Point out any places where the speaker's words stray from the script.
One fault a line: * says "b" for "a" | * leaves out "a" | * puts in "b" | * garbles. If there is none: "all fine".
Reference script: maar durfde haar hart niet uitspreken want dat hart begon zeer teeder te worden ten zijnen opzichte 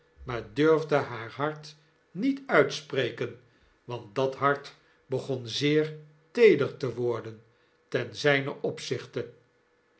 all fine